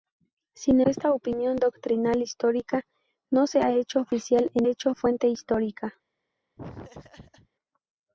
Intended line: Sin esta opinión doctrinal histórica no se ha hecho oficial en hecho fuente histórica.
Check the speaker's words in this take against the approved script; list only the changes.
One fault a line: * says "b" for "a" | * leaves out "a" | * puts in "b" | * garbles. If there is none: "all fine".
all fine